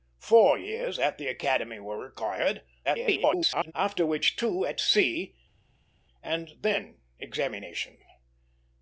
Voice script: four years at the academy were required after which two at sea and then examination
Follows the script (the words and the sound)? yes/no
no